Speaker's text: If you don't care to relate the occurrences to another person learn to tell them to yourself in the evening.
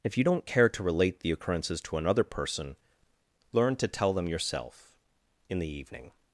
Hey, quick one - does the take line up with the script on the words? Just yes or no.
no